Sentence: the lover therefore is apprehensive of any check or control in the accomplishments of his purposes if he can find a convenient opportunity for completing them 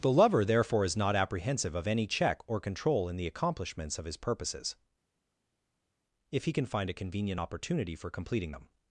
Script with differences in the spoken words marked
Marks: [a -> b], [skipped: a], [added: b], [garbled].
the lover therefore is [added: not] apprehensive of any check or control in the accomplishments of his purposes if he can find a convenient opportunity for completing them